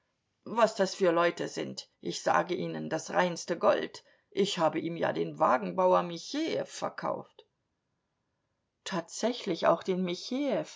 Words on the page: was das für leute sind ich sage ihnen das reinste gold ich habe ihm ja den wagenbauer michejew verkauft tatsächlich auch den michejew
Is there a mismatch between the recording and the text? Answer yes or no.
no